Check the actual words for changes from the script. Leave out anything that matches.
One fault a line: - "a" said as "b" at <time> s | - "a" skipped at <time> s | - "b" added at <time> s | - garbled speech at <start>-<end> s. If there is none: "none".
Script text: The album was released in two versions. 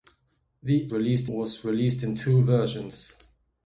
- "album" said as "released" at 0.9 s